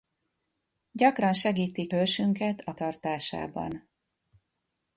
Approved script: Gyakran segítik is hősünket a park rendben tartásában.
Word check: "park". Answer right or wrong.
wrong